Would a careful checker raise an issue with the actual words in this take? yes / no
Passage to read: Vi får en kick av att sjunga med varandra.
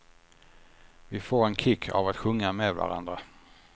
no